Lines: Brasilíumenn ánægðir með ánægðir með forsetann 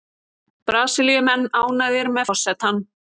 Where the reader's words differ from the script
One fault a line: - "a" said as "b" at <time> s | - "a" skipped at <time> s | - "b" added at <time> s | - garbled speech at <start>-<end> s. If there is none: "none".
- "ánægðir með" skipped at 2.3 s